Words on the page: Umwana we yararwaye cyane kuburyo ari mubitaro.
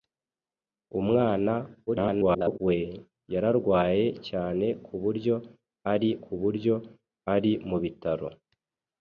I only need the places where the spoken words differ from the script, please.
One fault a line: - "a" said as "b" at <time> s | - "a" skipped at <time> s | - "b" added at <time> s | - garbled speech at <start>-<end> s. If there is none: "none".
- garbled speech at 1.9-2.6 s
- "kuburyo ari" added at 6.2 s